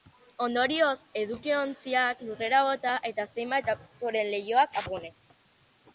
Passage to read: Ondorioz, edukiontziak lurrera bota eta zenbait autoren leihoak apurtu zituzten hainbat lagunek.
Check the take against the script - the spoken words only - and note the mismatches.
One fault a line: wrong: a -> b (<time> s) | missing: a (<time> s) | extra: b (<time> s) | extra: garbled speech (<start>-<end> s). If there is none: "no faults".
missing: apurtu zituzten hainbat (4.8 s)